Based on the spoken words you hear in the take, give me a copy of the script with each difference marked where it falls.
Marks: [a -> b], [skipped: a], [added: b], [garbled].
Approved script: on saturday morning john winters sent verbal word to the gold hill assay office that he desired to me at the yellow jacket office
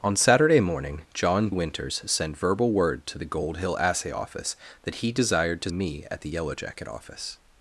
on saturday morning john winters sent verbal word to the gold hill assay office that he desired to me at the yellow jacket office